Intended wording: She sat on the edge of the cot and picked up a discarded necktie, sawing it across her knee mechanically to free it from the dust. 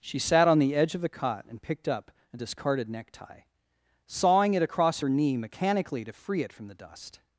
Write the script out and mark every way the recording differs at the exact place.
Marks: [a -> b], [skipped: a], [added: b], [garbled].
She sat on the edge of the cot and picked up a discarded necktie, sawing it across her knee mechanically to free it from the dust.